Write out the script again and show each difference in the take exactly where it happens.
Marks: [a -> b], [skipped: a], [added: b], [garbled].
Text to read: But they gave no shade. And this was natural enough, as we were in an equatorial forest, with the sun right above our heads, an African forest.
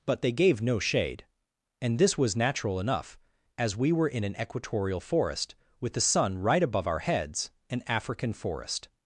But they gave no shade. And this was natural enough, as we were in an equatorial forest, with the sun right above our heads, an African forest.